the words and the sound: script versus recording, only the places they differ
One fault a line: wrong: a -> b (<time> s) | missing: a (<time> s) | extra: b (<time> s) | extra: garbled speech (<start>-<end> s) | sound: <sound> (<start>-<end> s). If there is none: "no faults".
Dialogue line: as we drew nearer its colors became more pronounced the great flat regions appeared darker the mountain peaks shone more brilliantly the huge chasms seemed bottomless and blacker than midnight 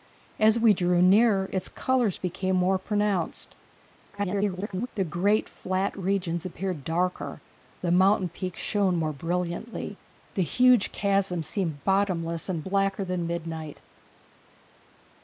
extra: garbled speech (4.1-4.9 s)